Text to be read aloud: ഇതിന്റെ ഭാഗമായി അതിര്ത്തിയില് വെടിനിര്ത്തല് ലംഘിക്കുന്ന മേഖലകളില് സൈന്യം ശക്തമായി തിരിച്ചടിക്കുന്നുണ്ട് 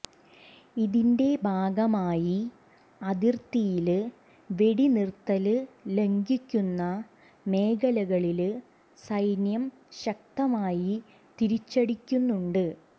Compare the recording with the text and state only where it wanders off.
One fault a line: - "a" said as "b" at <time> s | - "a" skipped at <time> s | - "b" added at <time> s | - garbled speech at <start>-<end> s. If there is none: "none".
none